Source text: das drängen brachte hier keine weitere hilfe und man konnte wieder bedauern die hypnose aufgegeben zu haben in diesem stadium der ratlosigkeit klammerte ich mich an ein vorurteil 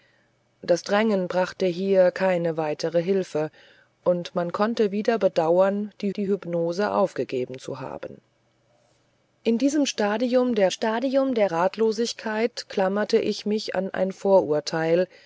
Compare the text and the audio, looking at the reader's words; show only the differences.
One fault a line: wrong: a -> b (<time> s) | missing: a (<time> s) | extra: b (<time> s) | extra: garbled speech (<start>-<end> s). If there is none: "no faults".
extra: die (6.2 s)
extra: stadium der (10.7 s)